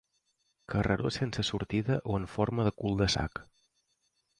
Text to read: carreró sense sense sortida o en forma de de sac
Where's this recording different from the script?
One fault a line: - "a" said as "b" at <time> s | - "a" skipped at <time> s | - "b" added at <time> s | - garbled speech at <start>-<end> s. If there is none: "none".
- "sense" skipped at 1.4 s
- "cul" added at 2.7 s